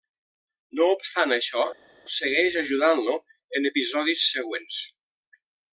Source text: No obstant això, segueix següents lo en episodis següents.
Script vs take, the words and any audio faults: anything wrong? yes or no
yes